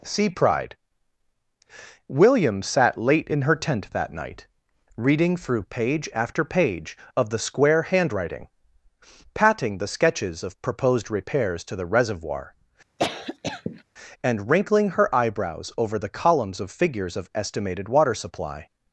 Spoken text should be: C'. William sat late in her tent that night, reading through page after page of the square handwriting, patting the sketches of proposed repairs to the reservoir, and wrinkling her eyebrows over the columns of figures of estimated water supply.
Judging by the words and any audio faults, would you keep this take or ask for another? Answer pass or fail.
fail